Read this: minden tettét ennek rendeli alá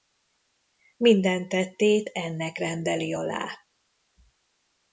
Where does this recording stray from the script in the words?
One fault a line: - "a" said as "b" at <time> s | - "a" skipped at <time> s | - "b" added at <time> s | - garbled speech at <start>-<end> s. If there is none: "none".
none